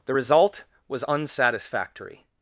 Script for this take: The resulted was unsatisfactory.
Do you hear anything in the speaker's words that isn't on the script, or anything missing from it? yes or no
yes